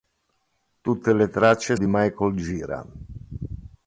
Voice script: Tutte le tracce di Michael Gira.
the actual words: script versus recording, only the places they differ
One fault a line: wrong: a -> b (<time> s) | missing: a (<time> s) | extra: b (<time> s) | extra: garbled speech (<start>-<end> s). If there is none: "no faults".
no faults